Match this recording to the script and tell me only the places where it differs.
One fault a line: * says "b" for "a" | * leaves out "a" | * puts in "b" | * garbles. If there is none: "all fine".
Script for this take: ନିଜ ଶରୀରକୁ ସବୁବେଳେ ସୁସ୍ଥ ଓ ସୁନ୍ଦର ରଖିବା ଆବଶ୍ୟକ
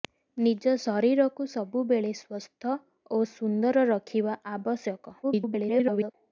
* garbles